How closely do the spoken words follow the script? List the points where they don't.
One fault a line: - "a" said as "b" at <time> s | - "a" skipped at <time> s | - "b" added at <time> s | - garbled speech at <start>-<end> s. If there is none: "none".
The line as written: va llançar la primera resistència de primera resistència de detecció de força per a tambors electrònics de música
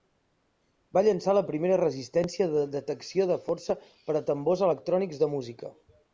- "primera resistència de" skipped at 2.6 s